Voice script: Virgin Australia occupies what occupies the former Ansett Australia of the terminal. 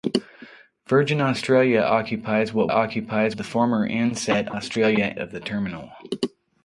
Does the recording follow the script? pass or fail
pass